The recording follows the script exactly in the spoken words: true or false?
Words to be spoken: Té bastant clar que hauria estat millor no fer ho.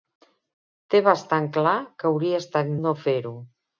false